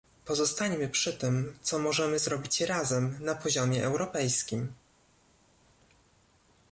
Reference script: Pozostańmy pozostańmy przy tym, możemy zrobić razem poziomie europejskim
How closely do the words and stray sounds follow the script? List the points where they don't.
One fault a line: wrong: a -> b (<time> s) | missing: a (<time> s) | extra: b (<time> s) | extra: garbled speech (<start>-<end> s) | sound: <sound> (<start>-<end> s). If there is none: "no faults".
missing: pozostańmy (0.9 s)
extra: co (1.6 s)
extra: na (3.2 s)